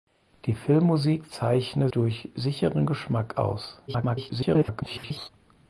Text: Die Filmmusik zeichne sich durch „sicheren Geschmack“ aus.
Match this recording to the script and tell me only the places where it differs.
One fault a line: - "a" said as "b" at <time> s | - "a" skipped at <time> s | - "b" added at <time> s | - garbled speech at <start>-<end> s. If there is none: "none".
- "sich" skipped at 1.9 s
- garbled speech at 3.9-5.3 s